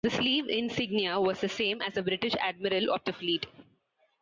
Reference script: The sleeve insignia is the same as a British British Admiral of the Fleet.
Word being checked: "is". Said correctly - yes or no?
no